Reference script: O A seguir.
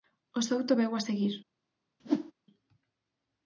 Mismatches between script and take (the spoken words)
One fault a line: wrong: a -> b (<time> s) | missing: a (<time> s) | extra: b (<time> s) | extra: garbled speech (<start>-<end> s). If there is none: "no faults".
extra: Souto veu (0.5 s)